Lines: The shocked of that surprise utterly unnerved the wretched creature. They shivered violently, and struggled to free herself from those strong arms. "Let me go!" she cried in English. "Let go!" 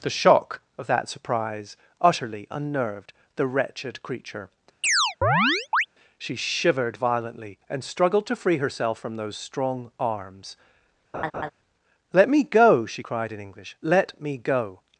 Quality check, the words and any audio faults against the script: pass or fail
fail